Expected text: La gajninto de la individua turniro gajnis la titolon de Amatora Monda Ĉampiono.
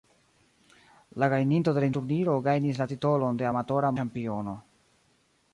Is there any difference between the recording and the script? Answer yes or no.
yes